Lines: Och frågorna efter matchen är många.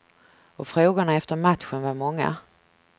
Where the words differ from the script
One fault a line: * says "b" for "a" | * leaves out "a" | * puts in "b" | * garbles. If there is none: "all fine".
* says "var" for "är"